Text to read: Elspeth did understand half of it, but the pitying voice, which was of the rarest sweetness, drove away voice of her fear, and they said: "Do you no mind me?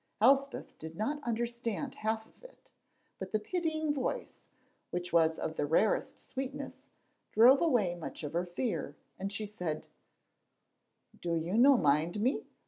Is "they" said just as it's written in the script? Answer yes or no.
no